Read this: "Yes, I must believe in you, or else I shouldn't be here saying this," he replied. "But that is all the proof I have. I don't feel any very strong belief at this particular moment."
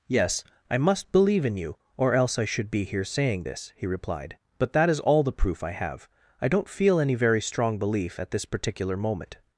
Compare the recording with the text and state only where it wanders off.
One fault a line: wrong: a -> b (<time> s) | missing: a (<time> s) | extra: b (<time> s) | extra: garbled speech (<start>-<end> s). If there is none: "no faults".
wrong: shouldn't -> should (2.5 s)